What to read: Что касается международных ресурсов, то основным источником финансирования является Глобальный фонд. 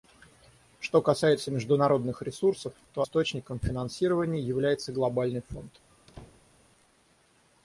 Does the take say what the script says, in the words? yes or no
no